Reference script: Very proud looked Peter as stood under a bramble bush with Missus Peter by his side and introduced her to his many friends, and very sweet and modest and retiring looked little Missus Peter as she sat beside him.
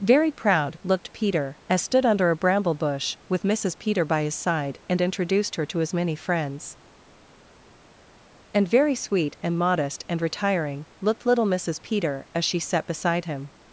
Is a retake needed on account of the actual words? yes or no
no